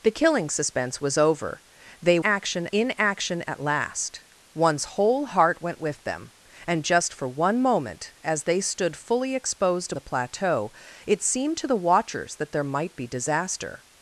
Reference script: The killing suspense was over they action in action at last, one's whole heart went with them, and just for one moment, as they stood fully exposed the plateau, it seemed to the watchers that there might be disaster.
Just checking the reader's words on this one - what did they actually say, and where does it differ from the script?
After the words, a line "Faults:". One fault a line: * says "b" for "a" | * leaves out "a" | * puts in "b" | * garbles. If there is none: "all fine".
The killing suspense was over they action in action at last, one's whole heart went with them, and just for one moment, as they stood fully exposed the plateau, it seemed to the watchers that there might be disaster.
Faults:
all fine